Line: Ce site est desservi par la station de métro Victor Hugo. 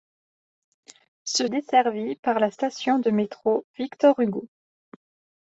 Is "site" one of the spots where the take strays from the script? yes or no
yes